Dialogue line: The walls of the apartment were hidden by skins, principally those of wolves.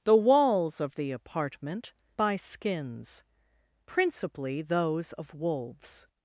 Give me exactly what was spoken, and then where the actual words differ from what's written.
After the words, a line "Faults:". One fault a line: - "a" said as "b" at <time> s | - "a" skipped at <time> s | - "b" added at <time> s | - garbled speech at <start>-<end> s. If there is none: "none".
The walls of the apartment by skins, principally those of wolves.
Faults:
- "were hidden" skipped at 1.9 s